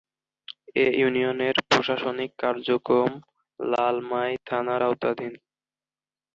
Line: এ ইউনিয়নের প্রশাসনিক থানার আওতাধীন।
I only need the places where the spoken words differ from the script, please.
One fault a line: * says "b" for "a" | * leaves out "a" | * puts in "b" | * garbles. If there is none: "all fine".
* puts in "কার্যক্রম লালমাই"